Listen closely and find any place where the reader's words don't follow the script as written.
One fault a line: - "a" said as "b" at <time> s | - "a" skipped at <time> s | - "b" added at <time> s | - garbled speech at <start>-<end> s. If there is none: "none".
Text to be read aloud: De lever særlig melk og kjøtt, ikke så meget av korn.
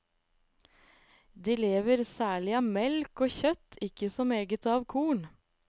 - "av" added at 2.6 s